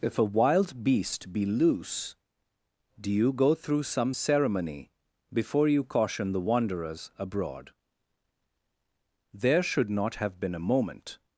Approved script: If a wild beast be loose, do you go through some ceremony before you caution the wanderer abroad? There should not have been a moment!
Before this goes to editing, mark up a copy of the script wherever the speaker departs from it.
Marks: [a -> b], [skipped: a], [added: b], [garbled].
If a wild beast be loose, do you go through some ceremony before you caution the [wanderer -> wanderers] abroad? There should not have been a moment!